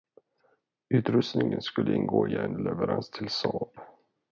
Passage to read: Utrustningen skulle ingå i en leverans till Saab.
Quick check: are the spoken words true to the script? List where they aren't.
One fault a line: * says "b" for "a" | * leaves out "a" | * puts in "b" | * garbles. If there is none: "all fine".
all fine